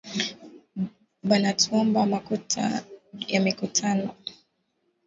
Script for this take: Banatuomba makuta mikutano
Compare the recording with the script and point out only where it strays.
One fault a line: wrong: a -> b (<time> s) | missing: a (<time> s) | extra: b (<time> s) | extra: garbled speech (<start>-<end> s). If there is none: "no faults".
extra: ya (3.3 s)